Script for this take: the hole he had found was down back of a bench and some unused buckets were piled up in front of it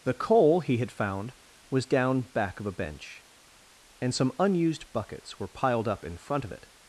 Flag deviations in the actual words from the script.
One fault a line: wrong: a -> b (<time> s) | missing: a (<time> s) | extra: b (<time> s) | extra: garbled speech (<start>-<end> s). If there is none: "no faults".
wrong: hole -> coal (0.1 s)